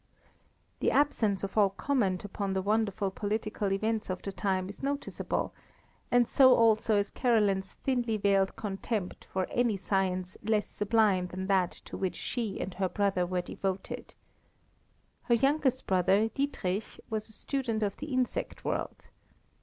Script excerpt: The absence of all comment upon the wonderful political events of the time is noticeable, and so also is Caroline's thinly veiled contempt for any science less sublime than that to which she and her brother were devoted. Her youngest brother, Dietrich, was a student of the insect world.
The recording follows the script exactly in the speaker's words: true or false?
true